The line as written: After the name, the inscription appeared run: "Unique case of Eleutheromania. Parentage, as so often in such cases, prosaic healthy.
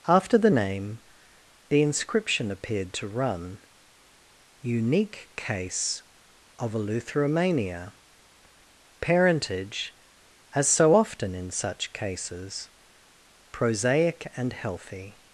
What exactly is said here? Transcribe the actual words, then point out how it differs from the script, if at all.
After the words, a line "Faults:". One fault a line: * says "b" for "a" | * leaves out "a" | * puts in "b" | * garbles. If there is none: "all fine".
After the name, the inscription appeared to run: "Unique case of Eleutheromania. Parentage, as so often in such cases, prosaic and healthy.
Faults:
* puts in "to"
* puts in "and"